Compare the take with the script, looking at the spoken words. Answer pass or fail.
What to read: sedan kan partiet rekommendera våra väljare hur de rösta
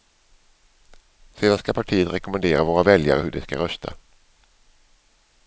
fail